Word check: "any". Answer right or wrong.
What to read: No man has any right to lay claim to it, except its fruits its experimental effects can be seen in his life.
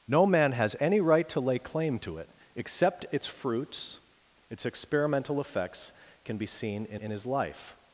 right